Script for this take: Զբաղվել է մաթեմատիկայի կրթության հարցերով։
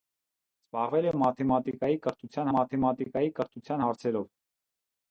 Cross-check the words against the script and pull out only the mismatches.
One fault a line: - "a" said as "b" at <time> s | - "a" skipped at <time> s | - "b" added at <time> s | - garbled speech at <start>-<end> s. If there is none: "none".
- "մաթեմատիկայի կրթության" added at 2.6 s